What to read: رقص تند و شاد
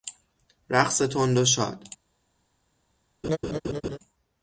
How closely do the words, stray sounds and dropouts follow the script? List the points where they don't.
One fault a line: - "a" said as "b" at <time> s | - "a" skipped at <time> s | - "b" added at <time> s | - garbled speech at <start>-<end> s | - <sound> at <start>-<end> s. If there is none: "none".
- laugh at 3.2-4.0 s